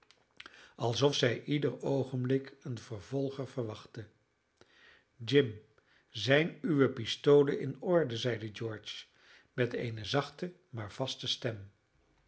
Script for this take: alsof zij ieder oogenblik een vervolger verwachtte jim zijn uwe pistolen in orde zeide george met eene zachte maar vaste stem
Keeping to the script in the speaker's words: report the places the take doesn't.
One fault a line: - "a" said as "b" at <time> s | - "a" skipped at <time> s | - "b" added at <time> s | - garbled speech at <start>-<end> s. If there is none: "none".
none